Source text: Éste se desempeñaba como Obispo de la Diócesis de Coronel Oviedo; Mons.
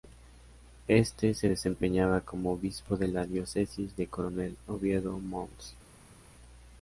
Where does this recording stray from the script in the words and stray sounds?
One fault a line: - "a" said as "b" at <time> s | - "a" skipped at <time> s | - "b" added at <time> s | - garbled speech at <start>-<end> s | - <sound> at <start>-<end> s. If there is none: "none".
none